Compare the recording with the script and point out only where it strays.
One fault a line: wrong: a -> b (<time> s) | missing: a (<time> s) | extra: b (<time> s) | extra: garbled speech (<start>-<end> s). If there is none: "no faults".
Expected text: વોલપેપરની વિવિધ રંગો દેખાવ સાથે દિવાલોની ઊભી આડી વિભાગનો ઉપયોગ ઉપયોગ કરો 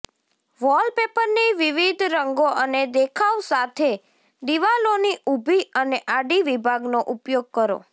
extra: અને (2.6 s)
extra: અને (5.8 s)
missing: ઉપયોગ (7.5 s)